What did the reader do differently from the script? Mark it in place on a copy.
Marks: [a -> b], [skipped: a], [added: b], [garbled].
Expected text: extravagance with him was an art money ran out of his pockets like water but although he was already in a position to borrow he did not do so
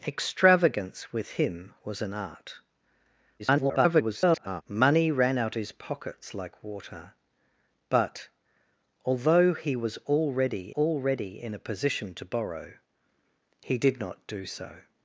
extravagance with him was an art [garbled] money ran out [skipped: of] his pockets like water but although he was already [added: already] in a position to borrow he did not do so